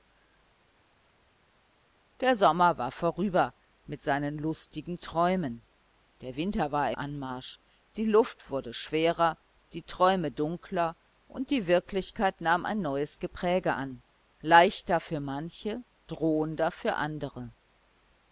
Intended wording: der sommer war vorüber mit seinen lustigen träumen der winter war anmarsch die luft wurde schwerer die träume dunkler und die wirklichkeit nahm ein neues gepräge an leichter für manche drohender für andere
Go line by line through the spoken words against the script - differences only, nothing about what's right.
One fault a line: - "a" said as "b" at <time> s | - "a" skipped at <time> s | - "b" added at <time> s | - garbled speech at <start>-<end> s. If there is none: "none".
none